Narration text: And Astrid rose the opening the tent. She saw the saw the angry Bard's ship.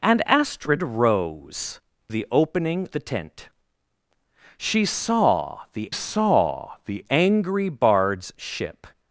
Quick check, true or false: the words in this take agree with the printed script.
true